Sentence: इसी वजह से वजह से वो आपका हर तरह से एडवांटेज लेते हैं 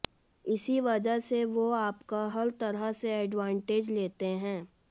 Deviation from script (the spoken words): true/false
true